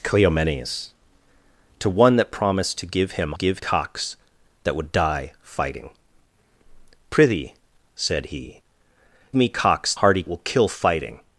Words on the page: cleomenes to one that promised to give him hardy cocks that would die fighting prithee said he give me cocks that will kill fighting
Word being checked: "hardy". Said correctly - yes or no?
no